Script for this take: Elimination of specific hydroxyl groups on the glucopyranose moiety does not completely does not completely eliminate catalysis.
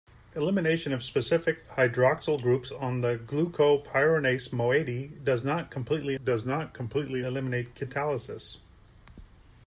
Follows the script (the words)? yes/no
yes